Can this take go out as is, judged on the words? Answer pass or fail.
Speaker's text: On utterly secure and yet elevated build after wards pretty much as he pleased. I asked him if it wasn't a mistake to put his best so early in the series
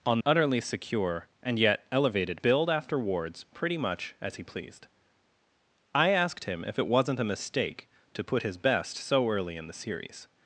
pass